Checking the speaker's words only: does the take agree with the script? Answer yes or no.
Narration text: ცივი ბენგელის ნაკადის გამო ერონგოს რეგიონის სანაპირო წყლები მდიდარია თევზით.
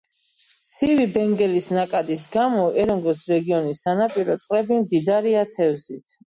yes